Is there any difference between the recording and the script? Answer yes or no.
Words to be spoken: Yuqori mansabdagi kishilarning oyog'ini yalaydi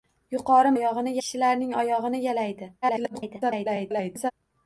yes